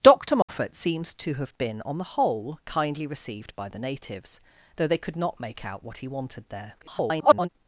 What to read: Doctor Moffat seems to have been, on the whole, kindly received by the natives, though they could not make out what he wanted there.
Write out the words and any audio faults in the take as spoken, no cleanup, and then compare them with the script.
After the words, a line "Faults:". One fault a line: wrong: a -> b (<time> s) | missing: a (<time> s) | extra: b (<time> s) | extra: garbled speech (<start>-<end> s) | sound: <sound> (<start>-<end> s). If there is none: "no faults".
Doctor Moffat seems to have been, on the whole, kindly received by the natives, though they could not make out what he wanted there. [garbled]
Faults:
sound: dropout (0.4-0.5 s)
extra: garbled speech (6.8-7.5 s)